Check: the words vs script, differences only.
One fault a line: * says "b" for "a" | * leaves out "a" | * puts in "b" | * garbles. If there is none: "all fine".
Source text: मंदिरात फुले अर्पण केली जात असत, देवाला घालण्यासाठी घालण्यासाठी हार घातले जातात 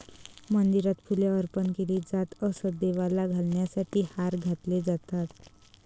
* leaves out "घालण्यासाठी"